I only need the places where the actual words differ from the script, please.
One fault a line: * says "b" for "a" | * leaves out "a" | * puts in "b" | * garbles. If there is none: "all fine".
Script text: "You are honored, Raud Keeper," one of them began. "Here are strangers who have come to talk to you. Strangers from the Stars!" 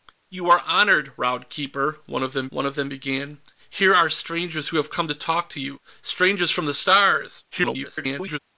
* puts in "one of them"
* garbles